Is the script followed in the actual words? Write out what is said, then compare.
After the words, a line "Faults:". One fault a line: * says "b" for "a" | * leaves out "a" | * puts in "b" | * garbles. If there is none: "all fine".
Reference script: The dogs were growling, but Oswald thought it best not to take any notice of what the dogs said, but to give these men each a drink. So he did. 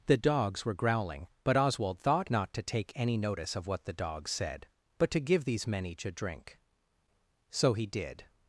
The dogs were growling, but Oswald thought not to take any notice of what the dogs said, but to give these men each a drink. So he did.
Faults:
* leaves out "it best"